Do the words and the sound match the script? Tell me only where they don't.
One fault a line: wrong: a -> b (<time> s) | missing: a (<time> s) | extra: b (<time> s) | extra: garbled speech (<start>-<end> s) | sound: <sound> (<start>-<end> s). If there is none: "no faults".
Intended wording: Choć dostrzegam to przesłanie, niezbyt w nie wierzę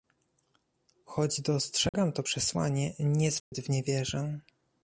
sound: dropout (1.9-1.9 s)
sound: dropout (3.4-3.5 s)